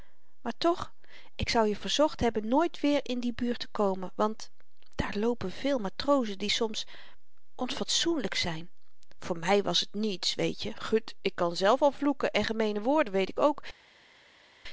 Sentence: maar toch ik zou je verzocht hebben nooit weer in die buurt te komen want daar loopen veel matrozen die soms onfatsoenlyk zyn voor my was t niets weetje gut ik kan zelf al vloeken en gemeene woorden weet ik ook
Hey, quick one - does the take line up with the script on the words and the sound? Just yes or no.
yes